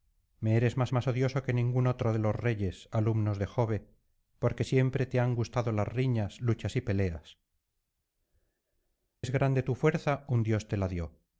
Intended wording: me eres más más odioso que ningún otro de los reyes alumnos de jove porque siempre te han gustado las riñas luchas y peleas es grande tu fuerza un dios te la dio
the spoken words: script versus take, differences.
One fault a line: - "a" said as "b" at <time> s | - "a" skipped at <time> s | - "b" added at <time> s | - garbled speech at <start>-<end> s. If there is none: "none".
none